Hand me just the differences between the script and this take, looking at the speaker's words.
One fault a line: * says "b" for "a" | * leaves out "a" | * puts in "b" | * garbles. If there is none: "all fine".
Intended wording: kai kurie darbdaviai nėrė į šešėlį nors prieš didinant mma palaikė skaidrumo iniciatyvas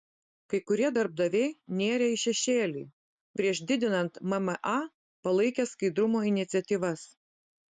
* leaves out "nors"